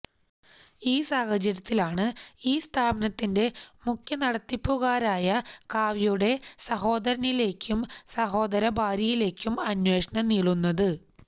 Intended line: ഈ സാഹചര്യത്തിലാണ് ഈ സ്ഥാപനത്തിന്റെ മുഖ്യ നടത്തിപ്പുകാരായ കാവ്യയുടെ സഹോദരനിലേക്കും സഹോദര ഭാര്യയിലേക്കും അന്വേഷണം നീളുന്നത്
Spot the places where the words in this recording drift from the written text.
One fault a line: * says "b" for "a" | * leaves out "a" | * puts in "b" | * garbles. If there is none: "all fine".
all fine